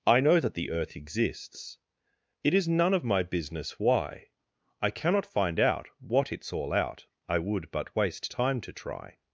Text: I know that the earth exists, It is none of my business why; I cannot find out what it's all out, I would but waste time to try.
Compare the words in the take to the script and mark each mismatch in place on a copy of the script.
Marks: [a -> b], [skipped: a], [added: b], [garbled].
I know that the earth exists, It is none of my business why; I cannot find out what it's all out, I would but waste time to try.